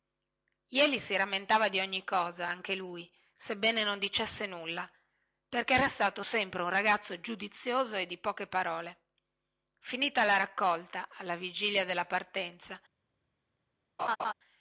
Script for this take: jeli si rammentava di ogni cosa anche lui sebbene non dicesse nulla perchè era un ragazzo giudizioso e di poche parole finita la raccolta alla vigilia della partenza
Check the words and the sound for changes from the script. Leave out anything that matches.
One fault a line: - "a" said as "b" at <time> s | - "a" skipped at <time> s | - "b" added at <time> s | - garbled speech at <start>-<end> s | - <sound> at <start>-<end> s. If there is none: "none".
- "stato sempre" added at 5.9 s
- laugh at 14.0-14.3 s